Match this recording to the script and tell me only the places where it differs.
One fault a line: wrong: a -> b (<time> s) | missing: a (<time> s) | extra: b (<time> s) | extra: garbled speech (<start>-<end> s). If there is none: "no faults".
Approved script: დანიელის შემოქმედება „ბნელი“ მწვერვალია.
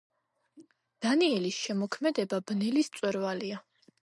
no faults